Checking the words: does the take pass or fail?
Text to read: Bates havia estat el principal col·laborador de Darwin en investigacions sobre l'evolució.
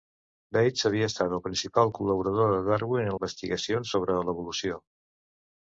pass